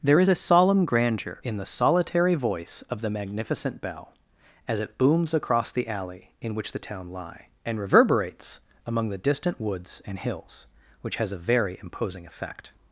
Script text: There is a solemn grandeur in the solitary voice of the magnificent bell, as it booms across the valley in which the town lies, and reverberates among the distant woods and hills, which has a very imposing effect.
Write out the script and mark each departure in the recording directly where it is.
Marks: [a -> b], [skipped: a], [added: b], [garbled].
There is a solemn grandeur in the solitary voice of the magnificent bell, as it booms across the [valley -> alley] in which the town [lies, -> lie] and reverberates among the distant woods and hills, which has a very imposing effect.